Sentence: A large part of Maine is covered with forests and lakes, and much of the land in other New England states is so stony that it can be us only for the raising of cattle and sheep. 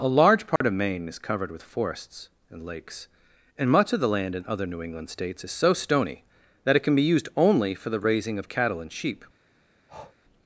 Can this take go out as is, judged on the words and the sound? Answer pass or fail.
fail